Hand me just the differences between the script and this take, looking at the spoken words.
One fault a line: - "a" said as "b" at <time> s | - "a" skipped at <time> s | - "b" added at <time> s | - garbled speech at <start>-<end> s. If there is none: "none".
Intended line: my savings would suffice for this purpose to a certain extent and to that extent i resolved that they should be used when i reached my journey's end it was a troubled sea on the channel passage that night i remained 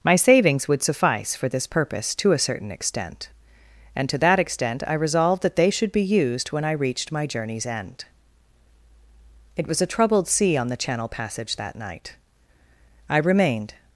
none